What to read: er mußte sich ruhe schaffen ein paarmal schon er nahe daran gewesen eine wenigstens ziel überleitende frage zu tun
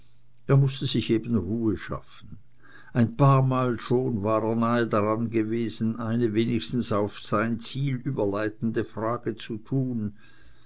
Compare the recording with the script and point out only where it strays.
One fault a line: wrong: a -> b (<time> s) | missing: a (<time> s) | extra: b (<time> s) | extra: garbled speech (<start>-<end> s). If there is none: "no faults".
extra: eben (1.1 s)
extra: war (4.2 s)
extra: auf sein (6.9 s)